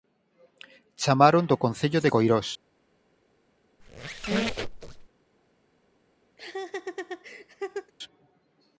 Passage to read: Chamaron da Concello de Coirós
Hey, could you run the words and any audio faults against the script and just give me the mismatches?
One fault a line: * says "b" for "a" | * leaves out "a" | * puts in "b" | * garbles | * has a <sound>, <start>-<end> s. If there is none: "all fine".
* says "do" for "da"
* has a squeak, 3.8-5.1 s
* has a laugh, 6.4-7.9 s